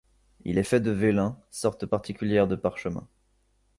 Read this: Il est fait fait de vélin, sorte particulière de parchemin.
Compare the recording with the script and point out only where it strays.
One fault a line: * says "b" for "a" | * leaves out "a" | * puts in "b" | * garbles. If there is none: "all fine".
* leaves out "fait"